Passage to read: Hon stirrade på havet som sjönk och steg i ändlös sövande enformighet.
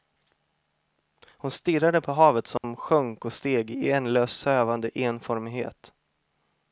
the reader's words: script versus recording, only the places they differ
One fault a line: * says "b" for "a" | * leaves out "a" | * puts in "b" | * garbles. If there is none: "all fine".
all fine